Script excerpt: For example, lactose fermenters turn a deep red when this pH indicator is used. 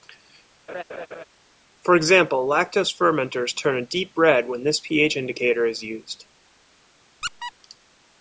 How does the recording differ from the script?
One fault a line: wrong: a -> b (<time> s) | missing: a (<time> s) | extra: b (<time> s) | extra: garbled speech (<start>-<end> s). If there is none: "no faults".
no faults